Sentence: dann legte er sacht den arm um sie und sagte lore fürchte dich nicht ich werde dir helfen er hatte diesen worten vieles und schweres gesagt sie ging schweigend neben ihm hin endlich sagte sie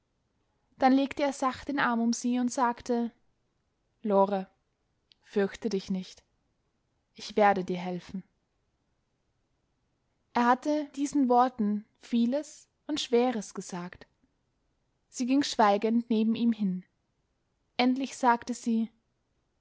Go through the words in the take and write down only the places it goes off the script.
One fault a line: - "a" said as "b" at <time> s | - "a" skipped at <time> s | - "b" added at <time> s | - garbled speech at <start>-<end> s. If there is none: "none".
none